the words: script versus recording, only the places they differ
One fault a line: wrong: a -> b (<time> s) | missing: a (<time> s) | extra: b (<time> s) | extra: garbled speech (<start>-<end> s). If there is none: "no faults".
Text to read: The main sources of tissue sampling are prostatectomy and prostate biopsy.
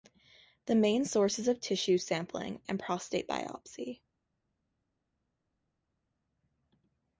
missing: are prostatectomy (2.6 s)